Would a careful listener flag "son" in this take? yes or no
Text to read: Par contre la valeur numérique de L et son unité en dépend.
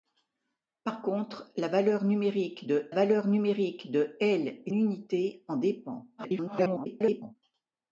yes